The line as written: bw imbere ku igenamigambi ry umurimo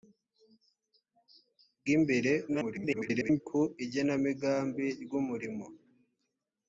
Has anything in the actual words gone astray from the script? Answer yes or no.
yes